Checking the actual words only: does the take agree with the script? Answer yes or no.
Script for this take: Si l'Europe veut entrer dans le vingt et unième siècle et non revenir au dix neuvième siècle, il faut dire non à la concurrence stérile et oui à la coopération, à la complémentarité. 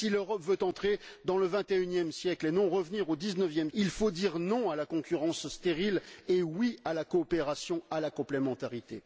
no